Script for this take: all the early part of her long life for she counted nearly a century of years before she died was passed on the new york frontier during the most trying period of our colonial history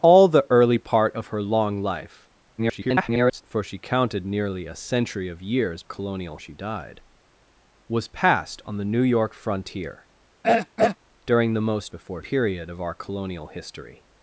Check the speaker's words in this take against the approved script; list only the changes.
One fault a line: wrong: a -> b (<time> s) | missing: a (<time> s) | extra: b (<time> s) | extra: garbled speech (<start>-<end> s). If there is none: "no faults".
extra: garbled speech (2.6-3.4 s)
wrong: before -> colonial (5.8 s)
wrong: trying -> before (11.9 s)